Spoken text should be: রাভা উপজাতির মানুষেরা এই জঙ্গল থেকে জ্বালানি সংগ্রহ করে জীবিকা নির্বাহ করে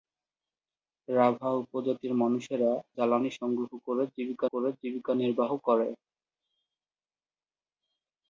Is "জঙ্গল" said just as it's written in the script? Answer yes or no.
no